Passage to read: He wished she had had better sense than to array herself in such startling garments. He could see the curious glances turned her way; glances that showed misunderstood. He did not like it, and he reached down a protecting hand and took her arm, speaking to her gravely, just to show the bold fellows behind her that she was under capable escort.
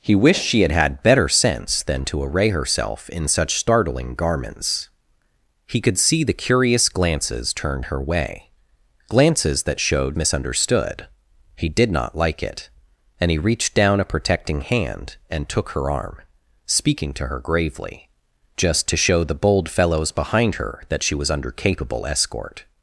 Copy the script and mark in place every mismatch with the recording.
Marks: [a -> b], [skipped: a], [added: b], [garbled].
He wished she had had better sense than to array herself in such startling garments. He could see the curious glances turned her way; glances that showed misunderstood. He did not like it, and he reached down a protecting hand and took her arm, speaking to her gravely, just to show the bold fellows behind her that she was under capable escort.